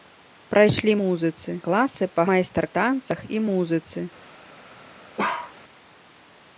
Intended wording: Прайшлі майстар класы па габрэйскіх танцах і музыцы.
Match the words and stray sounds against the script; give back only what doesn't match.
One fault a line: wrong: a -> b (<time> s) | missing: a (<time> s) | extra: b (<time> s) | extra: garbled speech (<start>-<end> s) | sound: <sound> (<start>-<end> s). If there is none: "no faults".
wrong: майстар -> музыцы (1.0 s)
wrong: габрэйскіх -> майстар (2.3 s)
sound: bark (5.2-5.5 s)